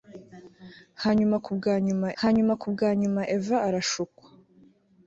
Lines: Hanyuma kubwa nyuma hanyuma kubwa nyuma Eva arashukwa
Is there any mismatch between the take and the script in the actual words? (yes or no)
no